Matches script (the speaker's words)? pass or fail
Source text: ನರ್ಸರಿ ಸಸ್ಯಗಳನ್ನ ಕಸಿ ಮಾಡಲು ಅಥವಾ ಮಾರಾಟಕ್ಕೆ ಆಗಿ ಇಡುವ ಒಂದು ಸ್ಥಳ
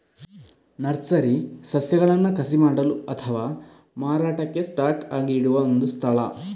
fail